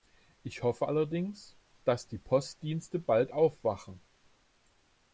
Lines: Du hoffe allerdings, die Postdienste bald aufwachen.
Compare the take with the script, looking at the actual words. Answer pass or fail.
fail